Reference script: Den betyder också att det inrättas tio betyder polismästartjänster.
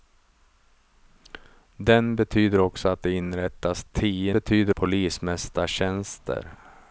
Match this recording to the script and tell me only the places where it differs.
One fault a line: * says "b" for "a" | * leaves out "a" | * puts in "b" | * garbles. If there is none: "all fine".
all fine